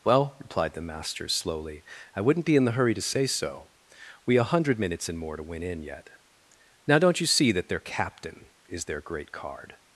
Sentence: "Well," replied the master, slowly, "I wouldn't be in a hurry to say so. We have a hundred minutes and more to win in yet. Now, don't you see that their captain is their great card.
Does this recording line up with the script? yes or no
no